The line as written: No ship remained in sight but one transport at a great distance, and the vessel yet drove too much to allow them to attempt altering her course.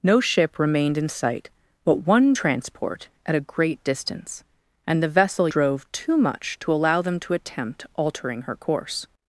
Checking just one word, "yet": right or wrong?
wrong